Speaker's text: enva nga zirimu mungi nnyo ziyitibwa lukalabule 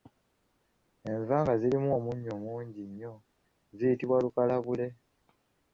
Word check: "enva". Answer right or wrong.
right